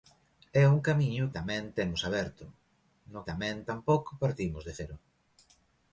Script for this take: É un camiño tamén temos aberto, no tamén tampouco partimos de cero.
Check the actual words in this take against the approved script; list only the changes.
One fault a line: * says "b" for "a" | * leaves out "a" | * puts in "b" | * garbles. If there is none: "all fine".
all fine